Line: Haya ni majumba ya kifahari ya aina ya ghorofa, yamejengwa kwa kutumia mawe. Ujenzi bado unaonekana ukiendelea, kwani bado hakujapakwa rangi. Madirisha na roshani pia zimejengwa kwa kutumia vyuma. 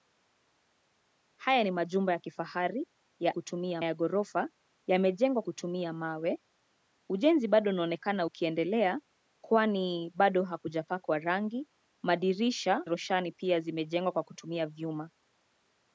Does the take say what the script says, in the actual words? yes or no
no